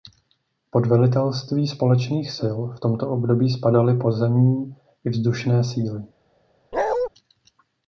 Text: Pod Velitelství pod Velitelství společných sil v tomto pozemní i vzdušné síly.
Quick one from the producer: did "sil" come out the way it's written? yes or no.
yes